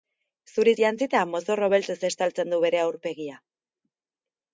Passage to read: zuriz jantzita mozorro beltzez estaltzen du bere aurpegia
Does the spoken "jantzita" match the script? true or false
true